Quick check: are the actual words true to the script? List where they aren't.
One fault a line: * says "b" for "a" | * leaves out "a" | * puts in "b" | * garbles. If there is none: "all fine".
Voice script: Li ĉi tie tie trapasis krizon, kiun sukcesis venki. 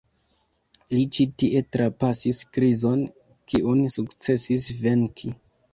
* leaves out "tie"